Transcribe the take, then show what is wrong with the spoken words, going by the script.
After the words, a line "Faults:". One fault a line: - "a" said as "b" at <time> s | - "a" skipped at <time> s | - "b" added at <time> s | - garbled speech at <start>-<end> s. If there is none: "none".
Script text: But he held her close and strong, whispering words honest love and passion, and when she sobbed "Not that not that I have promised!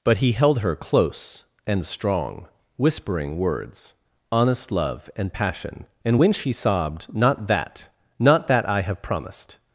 But he held her close and strong, whispering words honest love and passion, and when she sobbed "Not that not that I have promised!
Faults:
none